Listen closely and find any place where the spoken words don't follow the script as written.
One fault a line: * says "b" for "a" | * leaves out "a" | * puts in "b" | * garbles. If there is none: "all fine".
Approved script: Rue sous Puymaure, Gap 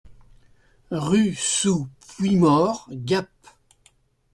all fine